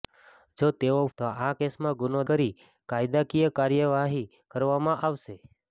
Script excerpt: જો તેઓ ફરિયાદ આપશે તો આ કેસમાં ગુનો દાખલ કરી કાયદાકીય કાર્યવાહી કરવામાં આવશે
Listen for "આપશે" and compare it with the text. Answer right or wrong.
wrong